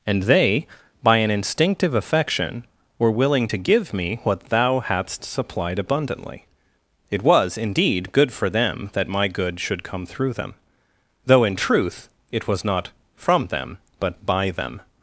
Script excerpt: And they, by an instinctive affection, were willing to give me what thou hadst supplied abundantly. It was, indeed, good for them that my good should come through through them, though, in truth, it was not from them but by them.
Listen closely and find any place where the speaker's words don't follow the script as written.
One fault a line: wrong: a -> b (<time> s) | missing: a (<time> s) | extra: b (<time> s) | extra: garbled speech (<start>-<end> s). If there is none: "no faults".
missing: through (10.3 s)